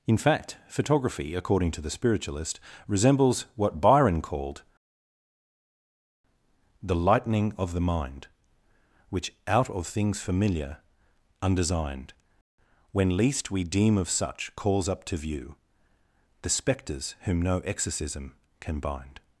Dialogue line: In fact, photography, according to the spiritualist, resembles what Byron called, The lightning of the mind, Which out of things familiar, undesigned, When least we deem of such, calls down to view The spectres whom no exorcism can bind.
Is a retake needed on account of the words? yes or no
yes